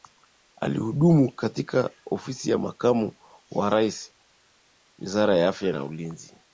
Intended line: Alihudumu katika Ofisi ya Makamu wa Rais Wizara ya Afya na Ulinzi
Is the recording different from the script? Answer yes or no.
no